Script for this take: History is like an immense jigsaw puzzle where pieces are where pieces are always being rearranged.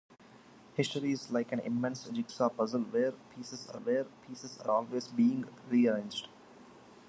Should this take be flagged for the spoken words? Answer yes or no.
no